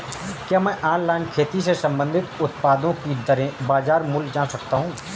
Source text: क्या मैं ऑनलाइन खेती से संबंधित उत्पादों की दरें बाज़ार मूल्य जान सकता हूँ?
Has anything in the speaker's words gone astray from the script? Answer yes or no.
no